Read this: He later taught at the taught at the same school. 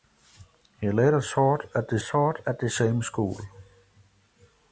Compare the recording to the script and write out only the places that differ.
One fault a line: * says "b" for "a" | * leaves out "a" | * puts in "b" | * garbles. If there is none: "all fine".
all fine